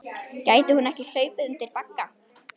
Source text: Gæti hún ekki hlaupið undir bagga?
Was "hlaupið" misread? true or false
false